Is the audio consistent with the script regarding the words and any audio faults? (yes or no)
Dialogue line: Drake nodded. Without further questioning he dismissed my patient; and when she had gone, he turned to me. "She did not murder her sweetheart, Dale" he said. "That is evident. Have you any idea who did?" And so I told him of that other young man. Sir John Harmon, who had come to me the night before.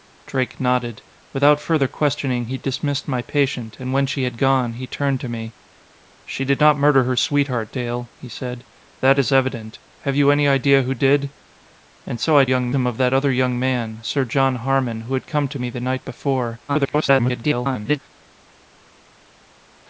no